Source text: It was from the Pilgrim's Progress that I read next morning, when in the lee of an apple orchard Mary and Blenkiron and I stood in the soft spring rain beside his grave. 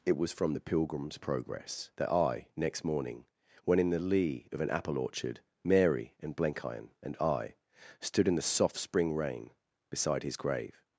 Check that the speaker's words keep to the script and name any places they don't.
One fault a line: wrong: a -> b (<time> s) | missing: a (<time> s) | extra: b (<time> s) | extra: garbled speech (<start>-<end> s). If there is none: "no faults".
missing: read (2.5 s)